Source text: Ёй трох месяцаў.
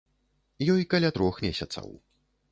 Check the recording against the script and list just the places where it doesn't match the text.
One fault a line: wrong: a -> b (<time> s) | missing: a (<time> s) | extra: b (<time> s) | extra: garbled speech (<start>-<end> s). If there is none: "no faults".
extra: каля (0.9 s)